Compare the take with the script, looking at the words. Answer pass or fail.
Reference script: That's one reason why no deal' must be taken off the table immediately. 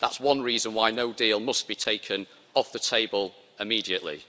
pass